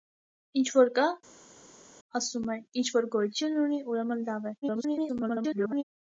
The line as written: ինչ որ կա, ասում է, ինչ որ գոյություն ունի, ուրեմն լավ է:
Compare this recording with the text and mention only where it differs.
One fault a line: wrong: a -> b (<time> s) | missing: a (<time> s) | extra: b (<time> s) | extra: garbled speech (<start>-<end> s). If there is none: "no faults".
extra: garbled speech (4.6-5.8 s)